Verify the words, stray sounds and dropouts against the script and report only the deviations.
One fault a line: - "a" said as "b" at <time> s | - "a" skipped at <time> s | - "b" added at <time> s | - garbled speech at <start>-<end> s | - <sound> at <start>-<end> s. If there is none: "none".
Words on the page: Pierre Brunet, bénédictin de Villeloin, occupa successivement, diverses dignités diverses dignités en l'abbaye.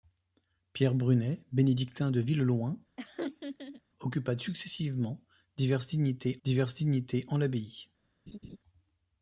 - laugh at 3.0-3.8 s
- laugh at 8.3-8.6 s